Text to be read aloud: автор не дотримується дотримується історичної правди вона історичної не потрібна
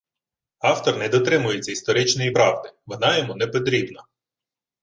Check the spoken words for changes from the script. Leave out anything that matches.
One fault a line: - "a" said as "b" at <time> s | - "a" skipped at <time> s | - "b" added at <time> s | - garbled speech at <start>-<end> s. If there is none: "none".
- "дотримується" skipped at 1.7 s
- "історичної" said as "йому" at 3.2 s